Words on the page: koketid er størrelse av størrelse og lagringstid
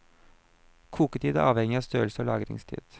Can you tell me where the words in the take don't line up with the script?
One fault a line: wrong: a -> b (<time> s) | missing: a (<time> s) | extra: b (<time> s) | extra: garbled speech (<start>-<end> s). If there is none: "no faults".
wrong: størrelse -> avhengig (1.5 s)